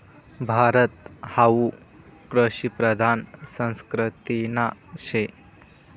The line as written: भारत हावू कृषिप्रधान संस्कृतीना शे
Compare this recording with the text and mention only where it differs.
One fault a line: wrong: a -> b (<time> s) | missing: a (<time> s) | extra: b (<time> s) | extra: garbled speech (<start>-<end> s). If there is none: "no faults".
no faults